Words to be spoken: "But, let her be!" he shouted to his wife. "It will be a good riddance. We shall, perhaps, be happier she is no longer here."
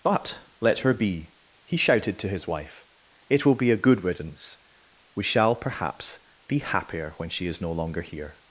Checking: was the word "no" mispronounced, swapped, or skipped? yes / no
no